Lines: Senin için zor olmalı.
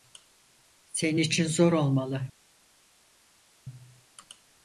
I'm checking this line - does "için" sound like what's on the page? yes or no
yes